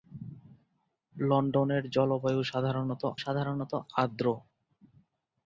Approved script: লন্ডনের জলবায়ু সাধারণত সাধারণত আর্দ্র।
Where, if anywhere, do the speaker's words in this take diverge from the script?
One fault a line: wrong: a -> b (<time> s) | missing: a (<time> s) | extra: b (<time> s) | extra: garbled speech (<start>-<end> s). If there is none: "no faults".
no faults